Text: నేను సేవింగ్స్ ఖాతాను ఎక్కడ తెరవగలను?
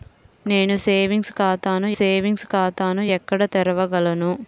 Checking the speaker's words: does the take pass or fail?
fail